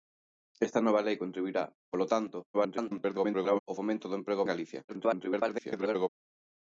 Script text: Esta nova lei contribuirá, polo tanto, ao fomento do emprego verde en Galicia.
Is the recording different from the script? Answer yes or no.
yes